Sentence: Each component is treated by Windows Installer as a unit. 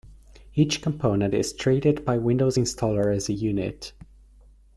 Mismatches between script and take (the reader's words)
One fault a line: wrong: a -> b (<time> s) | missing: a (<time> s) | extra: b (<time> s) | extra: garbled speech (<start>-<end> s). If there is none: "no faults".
no faults